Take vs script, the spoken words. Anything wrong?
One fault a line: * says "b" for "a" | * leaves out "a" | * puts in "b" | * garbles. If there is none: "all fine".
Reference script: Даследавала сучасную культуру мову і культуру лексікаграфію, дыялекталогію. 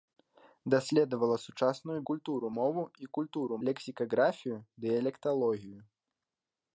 all fine